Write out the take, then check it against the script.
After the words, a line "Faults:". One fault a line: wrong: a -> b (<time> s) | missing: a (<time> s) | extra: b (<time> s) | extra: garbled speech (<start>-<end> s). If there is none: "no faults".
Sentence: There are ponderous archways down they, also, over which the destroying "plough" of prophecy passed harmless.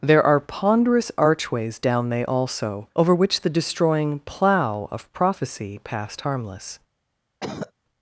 There are ponderous archways down they, also, over which the destroying "plough" of prophecy passed harmless.
Faults:
no faults